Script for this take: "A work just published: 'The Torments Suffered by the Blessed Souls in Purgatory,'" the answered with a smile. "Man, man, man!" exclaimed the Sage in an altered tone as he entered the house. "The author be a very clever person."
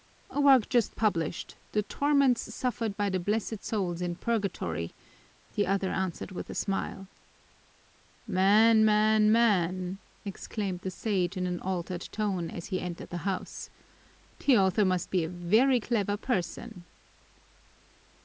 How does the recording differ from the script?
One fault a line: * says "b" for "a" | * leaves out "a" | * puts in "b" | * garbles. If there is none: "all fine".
* puts in "other"
* puts in "must"